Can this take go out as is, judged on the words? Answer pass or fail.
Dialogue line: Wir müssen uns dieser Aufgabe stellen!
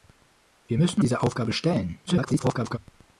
fail